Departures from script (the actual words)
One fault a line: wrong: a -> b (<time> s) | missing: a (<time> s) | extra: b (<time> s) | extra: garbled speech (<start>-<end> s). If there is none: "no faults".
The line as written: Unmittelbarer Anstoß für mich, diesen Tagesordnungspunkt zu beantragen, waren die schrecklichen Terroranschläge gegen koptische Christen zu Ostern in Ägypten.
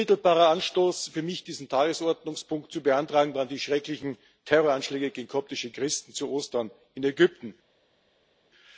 no faults